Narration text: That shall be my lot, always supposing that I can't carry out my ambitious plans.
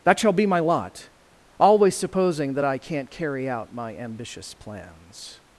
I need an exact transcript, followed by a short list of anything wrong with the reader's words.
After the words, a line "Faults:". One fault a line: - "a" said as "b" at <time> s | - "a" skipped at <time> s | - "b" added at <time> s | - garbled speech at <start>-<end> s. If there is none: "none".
That shall be my lot, always supposing that I can't carry out my ambitious plans.
Faults:
none